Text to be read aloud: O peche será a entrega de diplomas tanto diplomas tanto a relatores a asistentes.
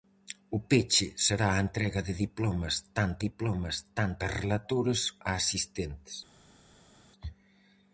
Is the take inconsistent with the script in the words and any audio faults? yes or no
no